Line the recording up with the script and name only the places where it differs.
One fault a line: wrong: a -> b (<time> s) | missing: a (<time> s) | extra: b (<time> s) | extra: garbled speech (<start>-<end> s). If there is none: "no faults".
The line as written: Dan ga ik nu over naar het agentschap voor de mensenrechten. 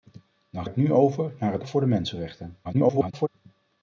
missing: ga (0.7 s)
missing: agentschap (1.6 s)
extra: garbled speech (2.6-3.3 s)